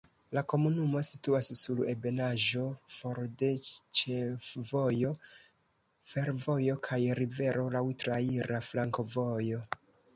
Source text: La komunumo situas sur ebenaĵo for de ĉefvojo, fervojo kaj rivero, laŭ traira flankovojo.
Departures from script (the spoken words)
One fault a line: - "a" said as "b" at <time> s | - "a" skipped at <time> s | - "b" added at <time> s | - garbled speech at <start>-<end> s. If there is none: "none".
none